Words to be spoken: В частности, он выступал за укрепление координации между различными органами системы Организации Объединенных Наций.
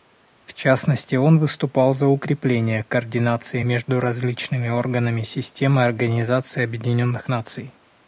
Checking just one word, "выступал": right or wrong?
right